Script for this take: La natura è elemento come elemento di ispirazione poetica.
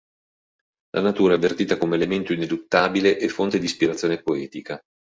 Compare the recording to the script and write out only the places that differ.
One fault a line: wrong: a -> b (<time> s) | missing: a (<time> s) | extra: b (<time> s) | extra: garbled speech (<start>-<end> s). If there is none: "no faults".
wrong: elemento -> avvertita (1.4 s)
extra: ineluttabile e fonte (2.3 s)